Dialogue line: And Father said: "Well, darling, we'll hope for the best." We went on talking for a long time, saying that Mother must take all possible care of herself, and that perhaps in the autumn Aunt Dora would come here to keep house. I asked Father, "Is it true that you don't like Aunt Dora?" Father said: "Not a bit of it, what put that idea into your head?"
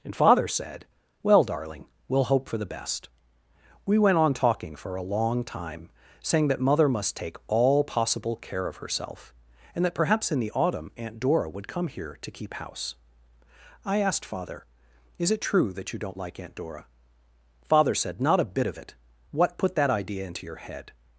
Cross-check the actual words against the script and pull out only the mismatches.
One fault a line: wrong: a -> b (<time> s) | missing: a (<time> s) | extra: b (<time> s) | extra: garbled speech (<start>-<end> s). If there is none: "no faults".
no faults